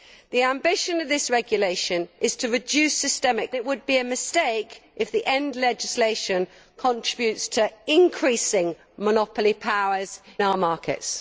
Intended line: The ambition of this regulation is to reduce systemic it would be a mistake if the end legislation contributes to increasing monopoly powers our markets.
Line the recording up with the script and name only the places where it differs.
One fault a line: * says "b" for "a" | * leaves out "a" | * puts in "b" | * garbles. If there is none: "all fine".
all fine